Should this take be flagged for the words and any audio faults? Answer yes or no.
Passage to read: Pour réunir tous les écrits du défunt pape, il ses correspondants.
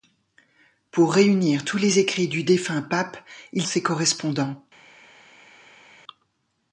no